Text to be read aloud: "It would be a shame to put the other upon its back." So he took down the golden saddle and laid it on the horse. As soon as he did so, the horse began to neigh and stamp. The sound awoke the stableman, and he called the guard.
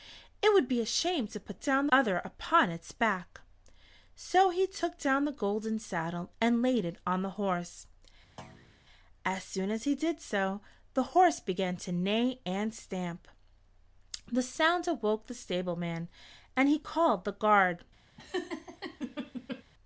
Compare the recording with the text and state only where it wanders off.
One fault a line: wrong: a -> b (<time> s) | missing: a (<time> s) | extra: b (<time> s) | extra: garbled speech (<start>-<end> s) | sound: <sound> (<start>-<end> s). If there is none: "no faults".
wrong: the -> down (1.6 s)
sound: thud (8.4-8.8 s)
sound: laugh (18.2-19.6 s)